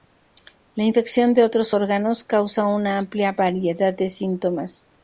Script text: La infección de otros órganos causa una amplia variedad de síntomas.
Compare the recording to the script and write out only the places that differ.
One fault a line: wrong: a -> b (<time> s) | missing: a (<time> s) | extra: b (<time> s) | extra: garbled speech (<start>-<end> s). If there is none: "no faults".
no faults